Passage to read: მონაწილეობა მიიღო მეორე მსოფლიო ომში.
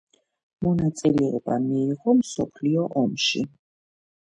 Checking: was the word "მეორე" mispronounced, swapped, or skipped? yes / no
yes